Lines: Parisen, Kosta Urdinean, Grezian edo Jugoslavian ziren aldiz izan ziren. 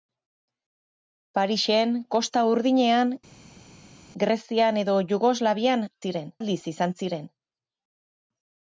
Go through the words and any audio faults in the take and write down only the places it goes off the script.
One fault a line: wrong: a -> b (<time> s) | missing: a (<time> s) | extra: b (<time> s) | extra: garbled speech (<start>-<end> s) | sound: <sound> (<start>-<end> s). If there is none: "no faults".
no faults